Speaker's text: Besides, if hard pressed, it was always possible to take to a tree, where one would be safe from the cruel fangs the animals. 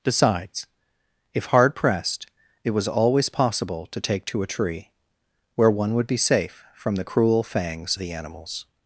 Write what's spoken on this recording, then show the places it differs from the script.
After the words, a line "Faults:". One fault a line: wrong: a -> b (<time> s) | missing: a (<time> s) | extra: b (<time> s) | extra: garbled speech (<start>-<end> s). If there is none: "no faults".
Besides, if hard pressed, it was always possible to take to a tree, where one would be safe from the cruel fangs the animals.
Faults:
no faults